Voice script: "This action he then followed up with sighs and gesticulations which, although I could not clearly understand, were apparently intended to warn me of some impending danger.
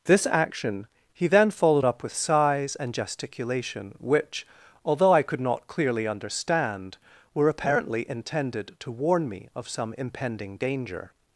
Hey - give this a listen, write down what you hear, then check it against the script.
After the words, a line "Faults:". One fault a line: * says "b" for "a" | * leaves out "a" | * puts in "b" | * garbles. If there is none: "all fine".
"This action he then followed up with sighs and gesticulation which, although I could not clearly understand, were apparently intended to warn me of some impending danger.
Faults:
* says "gesticulation" for "gesticulations"